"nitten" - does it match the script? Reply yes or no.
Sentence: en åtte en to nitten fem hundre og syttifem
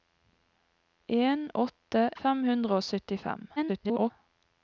no